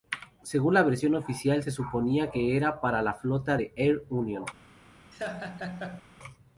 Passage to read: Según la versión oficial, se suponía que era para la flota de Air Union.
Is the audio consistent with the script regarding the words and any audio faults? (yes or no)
no